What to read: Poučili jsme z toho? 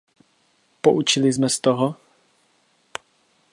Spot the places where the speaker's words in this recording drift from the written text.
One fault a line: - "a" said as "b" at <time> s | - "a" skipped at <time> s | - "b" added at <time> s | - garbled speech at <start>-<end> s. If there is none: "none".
none